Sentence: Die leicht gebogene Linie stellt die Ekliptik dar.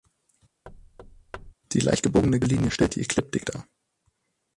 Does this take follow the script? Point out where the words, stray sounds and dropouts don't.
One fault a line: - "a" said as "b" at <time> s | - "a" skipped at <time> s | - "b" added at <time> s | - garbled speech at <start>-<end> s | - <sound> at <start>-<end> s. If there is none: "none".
- thud at 0.7-1.5 s